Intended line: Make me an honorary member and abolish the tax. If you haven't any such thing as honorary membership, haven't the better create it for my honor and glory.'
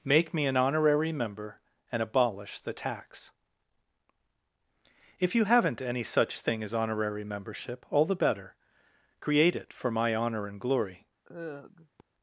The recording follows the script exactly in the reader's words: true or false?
false